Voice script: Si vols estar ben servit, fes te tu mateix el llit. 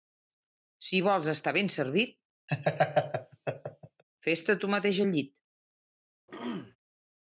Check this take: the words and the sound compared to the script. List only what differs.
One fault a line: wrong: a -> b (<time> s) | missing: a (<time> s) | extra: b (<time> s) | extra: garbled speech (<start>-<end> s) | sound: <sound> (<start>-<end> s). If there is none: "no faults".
sound: laugh (2.5-4.0 s)
sound: throat clearing (6.3-6.8 s)